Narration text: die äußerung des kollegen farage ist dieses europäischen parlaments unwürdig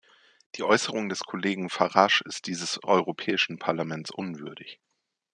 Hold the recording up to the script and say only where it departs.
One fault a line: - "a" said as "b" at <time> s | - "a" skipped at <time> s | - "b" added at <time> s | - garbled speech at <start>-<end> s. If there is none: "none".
none